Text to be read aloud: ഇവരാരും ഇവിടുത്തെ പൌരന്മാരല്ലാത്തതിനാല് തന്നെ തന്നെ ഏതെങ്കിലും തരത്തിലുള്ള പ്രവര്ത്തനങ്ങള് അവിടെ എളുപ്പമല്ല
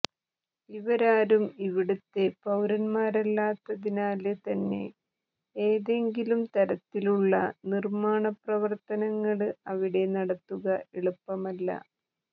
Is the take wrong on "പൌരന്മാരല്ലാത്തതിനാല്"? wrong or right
right